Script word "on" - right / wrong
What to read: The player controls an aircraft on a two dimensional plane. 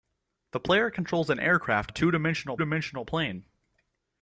wrong